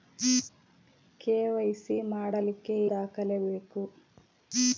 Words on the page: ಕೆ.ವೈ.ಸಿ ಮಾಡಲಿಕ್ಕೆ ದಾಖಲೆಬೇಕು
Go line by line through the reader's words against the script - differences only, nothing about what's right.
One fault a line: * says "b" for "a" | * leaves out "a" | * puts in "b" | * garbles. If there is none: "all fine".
all fine